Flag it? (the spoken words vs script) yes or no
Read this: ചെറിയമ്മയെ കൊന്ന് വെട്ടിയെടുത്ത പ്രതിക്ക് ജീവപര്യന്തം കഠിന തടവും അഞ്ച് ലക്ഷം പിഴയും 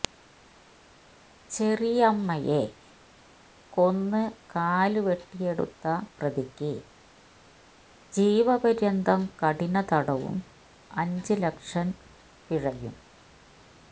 yes